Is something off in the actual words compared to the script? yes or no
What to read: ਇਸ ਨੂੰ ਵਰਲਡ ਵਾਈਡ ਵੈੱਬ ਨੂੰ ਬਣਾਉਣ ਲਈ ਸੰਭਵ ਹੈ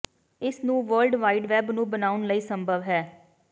no